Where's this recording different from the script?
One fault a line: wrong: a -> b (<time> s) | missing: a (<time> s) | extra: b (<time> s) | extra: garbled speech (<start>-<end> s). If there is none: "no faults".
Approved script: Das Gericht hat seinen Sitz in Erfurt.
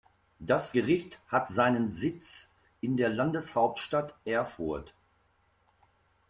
extra: der Landeshauptstadt (3.0 s)